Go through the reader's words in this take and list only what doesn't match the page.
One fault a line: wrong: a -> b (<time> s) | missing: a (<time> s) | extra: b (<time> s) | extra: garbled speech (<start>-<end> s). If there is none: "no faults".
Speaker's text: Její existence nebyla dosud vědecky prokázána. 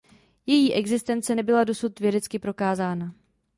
no faults